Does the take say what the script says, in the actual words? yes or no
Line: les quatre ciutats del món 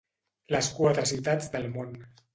yes